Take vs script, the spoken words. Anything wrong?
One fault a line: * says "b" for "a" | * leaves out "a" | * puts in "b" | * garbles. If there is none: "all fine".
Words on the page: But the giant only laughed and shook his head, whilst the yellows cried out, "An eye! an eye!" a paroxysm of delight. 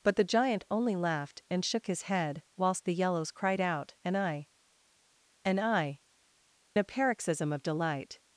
all fine